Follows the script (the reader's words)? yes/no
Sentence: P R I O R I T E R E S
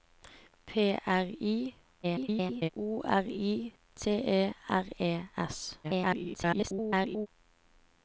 no